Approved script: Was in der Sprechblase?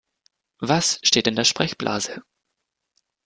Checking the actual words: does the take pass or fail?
fail